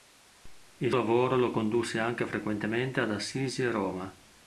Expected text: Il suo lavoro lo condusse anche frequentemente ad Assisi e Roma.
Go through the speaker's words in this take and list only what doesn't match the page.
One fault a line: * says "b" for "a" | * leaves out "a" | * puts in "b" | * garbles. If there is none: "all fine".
* leaves out "suo"